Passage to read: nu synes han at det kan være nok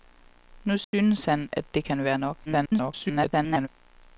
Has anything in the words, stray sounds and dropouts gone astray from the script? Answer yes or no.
yes